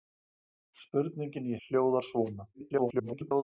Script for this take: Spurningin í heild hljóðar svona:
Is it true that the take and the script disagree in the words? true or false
true